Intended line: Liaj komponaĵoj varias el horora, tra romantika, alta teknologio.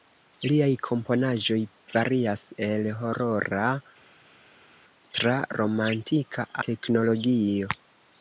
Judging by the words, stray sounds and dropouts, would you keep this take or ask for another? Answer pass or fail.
fail